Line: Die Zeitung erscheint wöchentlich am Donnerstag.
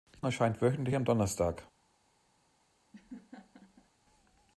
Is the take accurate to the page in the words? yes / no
no